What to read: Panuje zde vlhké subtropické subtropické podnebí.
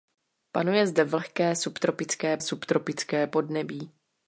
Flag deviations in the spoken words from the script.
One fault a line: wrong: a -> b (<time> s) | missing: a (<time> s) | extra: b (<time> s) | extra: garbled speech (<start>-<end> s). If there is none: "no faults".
no faults